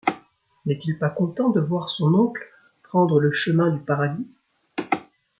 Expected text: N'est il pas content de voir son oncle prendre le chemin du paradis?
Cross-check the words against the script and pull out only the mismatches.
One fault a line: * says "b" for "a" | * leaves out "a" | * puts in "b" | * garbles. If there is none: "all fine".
all fine